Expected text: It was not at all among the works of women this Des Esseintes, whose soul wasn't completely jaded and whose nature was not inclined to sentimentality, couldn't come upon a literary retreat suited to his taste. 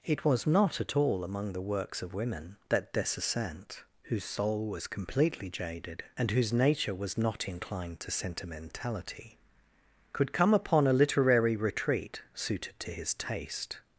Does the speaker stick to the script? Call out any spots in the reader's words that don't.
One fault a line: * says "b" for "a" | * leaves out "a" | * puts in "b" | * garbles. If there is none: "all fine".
* says "that" for "this"
* says "was" for "wasn't"
* says "could" for "couldn't"